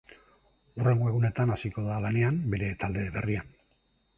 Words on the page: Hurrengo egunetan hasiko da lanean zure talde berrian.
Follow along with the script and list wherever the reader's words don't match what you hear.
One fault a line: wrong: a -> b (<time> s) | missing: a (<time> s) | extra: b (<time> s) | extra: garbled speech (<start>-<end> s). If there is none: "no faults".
wrong: zure -> bere (2.5 s)